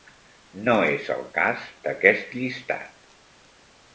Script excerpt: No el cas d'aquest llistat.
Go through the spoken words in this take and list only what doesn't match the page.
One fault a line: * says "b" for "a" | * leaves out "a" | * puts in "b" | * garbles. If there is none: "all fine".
* puts in "és"